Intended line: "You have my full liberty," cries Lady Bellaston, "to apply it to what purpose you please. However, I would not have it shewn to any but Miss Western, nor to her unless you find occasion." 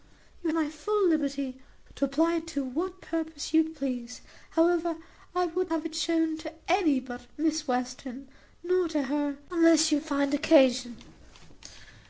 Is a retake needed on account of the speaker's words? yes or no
yes